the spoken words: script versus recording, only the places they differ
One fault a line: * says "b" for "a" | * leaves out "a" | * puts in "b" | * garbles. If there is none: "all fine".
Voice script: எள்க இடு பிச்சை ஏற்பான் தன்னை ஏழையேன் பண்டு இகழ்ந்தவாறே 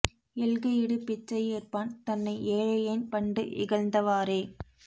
all fine